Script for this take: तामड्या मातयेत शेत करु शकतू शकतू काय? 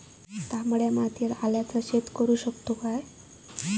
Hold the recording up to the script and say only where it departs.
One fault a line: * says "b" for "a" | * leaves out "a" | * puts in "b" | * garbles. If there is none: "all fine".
* puts in "आल्याचा"
* leaves out "शकतू"